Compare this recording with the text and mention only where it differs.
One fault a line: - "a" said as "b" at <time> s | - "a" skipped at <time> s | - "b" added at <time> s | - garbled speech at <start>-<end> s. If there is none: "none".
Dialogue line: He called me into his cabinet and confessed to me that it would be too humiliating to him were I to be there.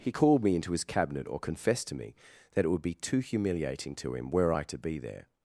- "and" said as "or" at 1.3 s